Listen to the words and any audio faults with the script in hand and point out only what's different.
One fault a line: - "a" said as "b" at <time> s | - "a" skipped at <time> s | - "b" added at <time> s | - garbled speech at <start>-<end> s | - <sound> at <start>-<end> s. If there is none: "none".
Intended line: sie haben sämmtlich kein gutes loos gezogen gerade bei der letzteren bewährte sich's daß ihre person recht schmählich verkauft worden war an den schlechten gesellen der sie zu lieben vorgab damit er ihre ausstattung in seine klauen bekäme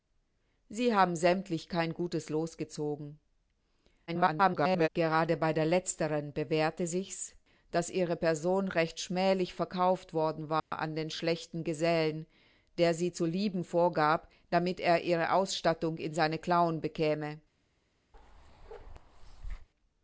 - garbled speech at 4.1-4.9 s
- dropout at 10.6-10.7 s
- bark at 18.1-19.7 s